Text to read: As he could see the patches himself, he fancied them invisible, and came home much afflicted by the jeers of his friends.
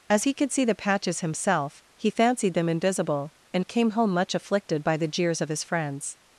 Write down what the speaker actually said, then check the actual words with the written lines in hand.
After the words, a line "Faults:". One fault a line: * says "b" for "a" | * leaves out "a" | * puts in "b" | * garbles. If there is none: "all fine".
As he could see the patches himself, he fancied them invisible, and came home much afflicted by the jeers of his friends.
Faults:
all fine